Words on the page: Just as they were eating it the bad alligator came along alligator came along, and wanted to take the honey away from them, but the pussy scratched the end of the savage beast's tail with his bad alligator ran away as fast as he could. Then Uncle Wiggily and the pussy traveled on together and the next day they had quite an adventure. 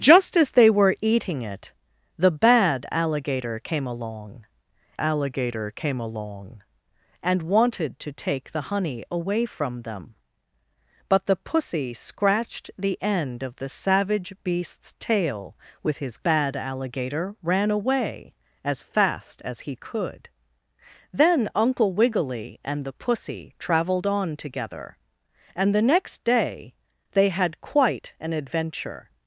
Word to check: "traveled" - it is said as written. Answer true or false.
true